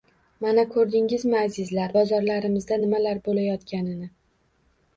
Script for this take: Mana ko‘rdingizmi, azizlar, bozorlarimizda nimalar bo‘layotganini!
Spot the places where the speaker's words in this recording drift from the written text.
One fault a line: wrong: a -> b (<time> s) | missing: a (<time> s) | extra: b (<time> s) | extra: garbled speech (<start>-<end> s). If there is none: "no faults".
no faults